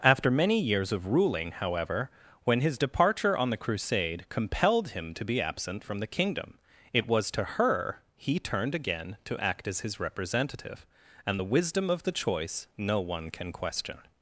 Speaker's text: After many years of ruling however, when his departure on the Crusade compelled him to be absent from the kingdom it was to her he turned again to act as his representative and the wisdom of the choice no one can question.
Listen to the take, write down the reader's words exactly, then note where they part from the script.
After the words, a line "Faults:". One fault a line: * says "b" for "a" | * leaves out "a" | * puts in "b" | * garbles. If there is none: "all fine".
After many years of ruling however, when his departure on the Crusade compelled him to be absent from the kingdom it was to her he turned again to act as his representative and the wisdom of the choice no one can question.
Faults:
all fine